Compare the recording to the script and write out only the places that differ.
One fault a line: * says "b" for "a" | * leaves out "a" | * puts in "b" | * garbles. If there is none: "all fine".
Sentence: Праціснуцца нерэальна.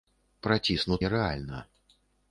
all fine